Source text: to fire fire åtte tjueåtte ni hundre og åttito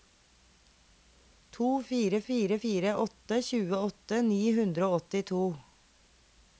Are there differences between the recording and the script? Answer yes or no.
yes